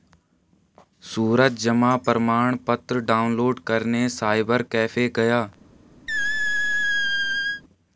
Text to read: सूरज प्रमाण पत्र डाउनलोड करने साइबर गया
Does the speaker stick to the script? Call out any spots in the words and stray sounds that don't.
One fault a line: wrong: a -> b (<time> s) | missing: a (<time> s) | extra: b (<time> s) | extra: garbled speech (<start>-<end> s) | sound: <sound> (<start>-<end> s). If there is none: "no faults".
extra: जमा (1.6 s)
extra: कैफे (4.7 s)
sound: squeak (6.1-7.6 s)